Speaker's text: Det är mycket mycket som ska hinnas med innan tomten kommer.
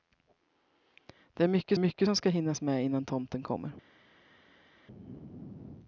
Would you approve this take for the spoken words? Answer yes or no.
yes